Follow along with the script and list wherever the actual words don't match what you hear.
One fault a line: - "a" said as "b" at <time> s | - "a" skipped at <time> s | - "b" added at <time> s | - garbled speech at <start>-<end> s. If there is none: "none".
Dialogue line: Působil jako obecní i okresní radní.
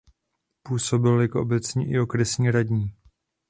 none